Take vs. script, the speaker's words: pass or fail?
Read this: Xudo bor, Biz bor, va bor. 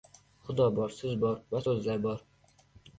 fail